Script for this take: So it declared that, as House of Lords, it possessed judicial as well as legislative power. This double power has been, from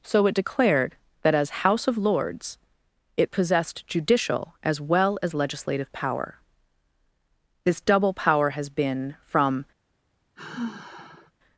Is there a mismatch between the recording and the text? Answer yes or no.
no